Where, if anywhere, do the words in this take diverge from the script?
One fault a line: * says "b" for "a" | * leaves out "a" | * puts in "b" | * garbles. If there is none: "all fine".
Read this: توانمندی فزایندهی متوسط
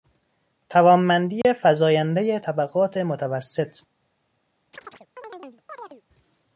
* puts in "طبقات"